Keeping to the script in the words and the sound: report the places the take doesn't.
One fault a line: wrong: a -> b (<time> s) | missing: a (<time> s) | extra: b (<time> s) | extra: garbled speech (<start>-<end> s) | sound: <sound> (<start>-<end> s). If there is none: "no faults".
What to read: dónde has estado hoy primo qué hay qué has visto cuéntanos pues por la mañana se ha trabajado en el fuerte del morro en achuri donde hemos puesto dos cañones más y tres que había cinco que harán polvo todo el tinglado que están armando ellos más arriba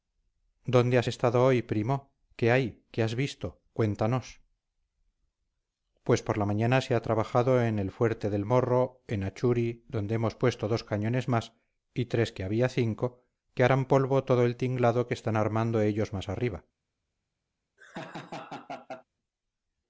sound: laugh (17.8-19.0 s)